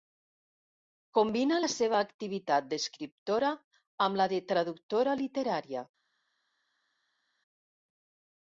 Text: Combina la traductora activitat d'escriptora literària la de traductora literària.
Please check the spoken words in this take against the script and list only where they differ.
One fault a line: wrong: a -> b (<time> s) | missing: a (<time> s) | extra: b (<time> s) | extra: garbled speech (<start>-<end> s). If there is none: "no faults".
wrong: traductora -> seva (1.7 s)
wrong: literària -> amb (4.1 s)